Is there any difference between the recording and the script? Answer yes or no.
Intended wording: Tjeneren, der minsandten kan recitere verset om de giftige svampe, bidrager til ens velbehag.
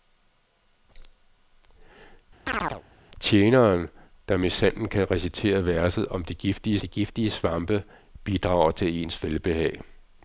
yes